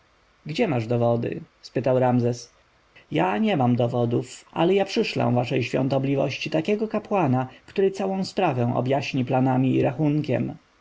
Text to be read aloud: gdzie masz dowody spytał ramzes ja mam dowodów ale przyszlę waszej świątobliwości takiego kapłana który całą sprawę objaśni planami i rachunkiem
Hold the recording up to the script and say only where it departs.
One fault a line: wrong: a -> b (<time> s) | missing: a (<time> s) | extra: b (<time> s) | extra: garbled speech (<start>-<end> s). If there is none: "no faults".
extra: nie (3.4 s)
extra: ja (4.7 s)